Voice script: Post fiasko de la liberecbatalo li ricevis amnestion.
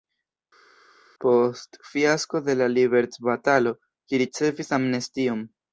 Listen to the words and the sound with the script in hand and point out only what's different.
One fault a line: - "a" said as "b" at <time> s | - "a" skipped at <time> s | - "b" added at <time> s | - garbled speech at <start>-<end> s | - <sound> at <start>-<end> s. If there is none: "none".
none